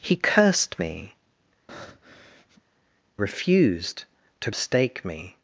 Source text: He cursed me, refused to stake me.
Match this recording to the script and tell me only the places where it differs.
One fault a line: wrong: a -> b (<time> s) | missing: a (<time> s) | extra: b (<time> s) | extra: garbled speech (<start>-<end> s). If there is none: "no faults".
no faults